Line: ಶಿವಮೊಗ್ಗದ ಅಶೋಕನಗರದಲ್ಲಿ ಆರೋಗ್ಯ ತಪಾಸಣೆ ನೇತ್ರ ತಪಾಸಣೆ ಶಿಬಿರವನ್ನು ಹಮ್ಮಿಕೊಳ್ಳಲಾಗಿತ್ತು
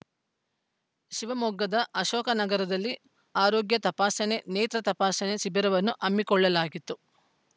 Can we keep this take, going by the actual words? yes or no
yes